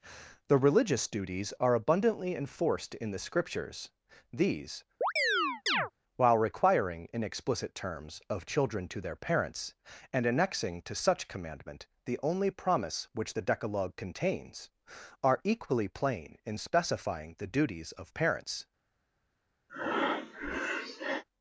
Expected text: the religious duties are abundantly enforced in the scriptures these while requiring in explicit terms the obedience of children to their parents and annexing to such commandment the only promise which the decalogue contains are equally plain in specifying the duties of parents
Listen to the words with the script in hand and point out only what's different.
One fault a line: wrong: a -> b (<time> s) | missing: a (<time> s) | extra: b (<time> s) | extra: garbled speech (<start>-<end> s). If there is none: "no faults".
missing: the obedience (8.2 s)